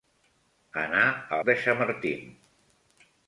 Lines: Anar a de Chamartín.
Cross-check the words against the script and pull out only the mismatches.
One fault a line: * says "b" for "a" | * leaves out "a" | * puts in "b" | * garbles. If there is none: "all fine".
all fine